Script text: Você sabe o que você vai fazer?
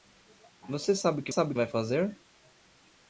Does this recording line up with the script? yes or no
no